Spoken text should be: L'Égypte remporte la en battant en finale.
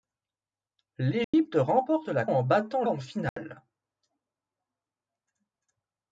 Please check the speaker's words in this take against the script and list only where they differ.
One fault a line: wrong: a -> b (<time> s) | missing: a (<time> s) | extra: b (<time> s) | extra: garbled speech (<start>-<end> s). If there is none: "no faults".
no faults